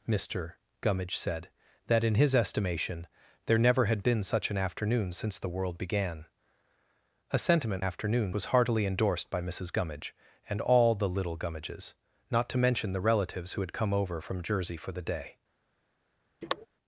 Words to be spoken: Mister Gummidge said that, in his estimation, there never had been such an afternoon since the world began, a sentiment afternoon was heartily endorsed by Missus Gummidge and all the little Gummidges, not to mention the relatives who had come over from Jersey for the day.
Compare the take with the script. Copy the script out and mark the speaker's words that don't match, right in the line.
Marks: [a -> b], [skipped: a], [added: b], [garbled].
Mister Gummidge said that, in his estimation, there never had been such an afternoon since the world began, a sentiment afternoon was heartily endorsed by Missus Gummidge and all the little Gummidges, not to mention the relatives who had come over from Jersey for the day.